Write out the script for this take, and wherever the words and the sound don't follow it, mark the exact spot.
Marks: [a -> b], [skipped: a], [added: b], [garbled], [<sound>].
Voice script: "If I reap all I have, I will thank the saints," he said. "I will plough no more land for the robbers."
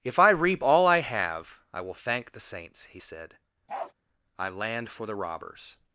"If I reap all I have, I will thank the saints," he said. [bark] "I [skipped: will plough no more] land for the robbers."